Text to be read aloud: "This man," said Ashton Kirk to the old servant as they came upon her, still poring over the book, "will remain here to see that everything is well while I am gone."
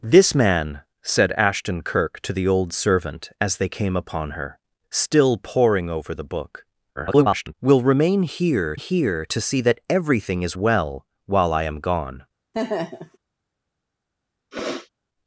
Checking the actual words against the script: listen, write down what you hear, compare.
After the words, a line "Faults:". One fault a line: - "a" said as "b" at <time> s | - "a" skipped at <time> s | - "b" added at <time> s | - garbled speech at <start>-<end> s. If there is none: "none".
"This man," said Ashton Kirk to the old servant as they came upon her, still poring over the book, [garbled] "will remain here here to see that everything is well while I am gone."
Faults:
- garbled speech at 7.0-7.5 s
- "here" added at 8.7 s